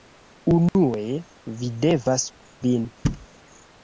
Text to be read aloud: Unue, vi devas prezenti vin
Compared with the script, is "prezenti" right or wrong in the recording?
wrong